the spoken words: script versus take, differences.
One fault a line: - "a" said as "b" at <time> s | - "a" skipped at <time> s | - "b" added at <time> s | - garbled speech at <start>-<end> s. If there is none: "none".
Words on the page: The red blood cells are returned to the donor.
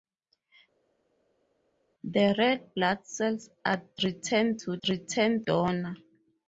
- "the" said as "returned" at 4.9 s